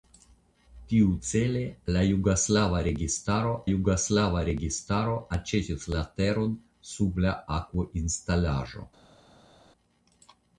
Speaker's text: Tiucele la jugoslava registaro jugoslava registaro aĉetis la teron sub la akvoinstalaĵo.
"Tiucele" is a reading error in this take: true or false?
false